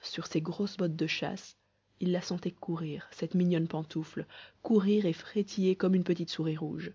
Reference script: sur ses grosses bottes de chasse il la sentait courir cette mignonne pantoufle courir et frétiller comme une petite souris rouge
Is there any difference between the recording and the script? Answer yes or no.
no